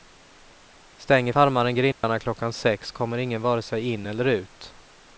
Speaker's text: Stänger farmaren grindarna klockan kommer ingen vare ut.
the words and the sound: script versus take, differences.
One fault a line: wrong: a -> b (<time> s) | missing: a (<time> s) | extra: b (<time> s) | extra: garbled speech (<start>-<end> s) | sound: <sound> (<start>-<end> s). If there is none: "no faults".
sound: dropout (1.9-2.0 s)
extra: sex (2.5 s)
extra: sig in eller (3.6 s)